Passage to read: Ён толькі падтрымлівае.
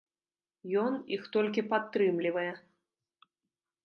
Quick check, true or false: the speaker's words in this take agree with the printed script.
false